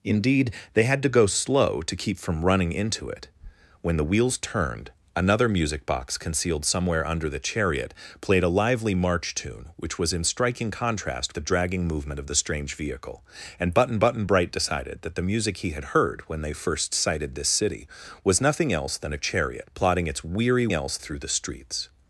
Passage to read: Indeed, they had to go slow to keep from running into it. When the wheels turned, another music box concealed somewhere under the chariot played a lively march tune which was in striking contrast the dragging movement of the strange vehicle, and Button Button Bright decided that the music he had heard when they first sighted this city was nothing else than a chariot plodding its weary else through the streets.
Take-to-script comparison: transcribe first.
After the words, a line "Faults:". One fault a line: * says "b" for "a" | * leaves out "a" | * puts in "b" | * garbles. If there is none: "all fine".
Indeed, they had to go slow to keep from running into it. When the wheels turned, another music box concealed somewhere under the chariot played a lively march tune which was in striking contrast the dragging movement of the strange vehicle, and Button Button Bright decided that the music he had heard when they first sighted this city was nothing else than a chariot plodding its weary else through the streets.
Faults:
all fine